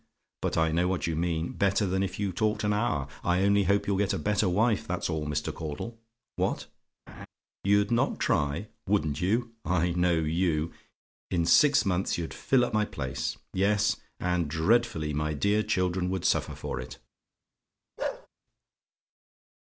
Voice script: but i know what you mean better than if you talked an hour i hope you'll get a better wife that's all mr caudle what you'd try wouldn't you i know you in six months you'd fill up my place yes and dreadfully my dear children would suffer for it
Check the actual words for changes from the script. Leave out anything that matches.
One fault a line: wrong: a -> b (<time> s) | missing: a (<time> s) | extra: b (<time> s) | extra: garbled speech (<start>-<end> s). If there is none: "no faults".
extra: only (3.4 s)
extra: not (7.9 s)